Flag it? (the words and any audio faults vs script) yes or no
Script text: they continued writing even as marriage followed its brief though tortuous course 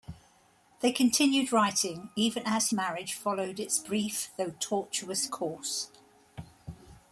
no